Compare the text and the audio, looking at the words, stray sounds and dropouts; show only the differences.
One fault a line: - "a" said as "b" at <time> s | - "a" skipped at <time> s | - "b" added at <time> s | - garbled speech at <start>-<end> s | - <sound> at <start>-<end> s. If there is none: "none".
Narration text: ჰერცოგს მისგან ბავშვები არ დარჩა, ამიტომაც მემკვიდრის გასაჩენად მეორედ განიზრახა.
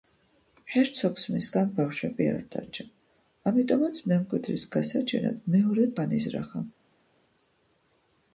none